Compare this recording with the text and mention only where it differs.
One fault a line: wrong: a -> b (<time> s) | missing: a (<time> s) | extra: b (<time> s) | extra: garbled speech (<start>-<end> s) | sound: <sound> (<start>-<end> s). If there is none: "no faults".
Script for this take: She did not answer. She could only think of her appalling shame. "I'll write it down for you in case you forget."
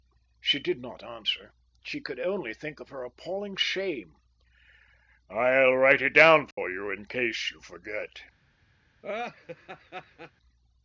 sound: dropout (6.5-6.6 s)
sound: laugh (9.0-10.3 s)